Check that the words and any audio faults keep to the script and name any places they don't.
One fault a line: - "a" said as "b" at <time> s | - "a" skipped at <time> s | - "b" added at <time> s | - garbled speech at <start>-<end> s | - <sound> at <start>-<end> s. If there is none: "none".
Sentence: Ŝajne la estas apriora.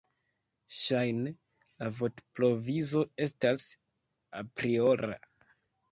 - "vortprovizo" added at 2.0 s